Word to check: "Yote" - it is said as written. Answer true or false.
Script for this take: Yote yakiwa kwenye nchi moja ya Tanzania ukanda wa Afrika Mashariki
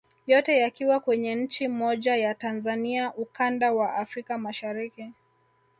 true